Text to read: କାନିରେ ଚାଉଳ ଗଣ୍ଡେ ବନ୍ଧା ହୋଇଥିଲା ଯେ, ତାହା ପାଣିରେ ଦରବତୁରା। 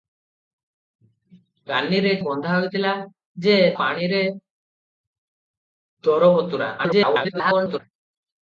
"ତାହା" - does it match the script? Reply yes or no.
no